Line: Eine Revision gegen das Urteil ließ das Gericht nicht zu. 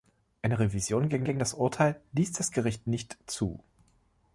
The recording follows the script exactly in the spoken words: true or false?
false